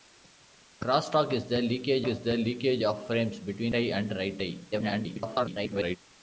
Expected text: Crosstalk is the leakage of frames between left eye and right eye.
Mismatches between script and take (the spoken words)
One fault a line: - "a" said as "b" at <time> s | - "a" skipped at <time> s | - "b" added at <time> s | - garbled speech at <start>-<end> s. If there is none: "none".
- "is the leakage" added at 2.1 s
- "left" skipped at 3.7 s
- garbled speech at 4.7-6.0 s